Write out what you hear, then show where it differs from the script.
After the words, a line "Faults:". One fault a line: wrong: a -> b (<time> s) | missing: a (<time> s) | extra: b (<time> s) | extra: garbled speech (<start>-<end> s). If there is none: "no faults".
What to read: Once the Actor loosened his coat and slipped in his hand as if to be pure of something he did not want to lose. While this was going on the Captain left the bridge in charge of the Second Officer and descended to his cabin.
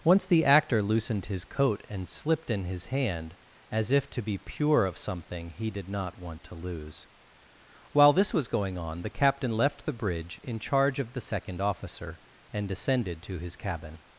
Once the Actor loosened his coat and slipped in his hand as if to be pure of something he did not want to lose. While this was going on the Captain left the bridge in charge of the Second Officer and descended to his cabin.
Faults:
no faults